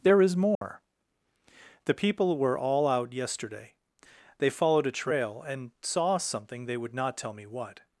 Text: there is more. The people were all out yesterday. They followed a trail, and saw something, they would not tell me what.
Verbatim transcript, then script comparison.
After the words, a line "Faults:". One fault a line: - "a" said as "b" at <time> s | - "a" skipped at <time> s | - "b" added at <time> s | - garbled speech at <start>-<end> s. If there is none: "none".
there is more. The people were all out yesterday. They followed a trail, and saw something, they would not tell me what.
Faults:
none